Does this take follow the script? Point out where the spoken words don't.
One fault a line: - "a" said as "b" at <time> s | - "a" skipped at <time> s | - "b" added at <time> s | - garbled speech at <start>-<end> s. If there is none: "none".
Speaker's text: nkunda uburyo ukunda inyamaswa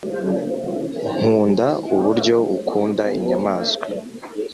none